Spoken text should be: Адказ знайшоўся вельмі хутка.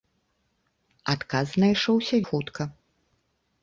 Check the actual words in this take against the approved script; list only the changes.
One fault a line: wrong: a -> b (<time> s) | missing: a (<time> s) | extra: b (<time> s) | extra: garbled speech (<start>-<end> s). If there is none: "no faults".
missing: вельмі (2.1 s)